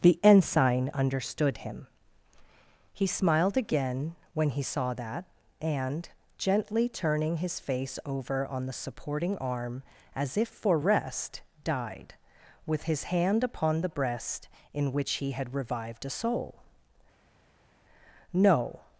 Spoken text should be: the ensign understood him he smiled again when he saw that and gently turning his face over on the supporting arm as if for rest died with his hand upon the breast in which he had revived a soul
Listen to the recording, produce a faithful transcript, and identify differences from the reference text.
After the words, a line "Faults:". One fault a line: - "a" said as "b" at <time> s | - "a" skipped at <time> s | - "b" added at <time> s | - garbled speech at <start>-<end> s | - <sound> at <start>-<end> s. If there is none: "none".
the ensign understood him he smiled again when he saw that and gently turning his face over on the supporting arm as if for rest died with his hand upon the breast in which he had revived a soul no
Faults:
- "no" added at 18.3 s